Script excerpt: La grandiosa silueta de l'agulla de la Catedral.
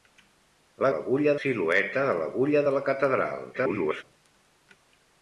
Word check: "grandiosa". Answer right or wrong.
wrong